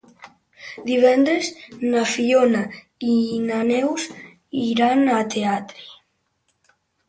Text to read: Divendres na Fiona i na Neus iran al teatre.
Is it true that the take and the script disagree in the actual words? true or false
false